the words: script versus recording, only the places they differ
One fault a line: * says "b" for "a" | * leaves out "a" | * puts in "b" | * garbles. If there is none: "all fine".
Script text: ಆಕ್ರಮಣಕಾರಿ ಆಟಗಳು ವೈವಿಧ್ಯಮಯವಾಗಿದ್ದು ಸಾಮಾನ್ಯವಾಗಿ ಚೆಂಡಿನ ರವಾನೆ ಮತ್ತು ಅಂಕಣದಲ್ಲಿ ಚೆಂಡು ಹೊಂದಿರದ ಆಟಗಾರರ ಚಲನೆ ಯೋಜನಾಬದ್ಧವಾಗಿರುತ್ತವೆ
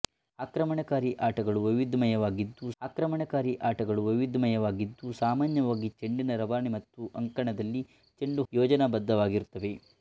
* puts in "ಆಕ್ರಮಣಕಾರಿ ಆಟಗಳು ವೈವಿಧ್ಯಮಯವಾಗಿದ್ದು"
* leaves out "ಹೊಂದಿರದ ಆಟಗಾರರ ಚಲನೆ"